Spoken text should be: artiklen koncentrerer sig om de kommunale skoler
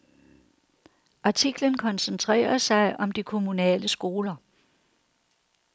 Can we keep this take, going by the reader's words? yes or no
yes